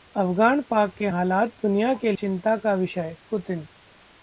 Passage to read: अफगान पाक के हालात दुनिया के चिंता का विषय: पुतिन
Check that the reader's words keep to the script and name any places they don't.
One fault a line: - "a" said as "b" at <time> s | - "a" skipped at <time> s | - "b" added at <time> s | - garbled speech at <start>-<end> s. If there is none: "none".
none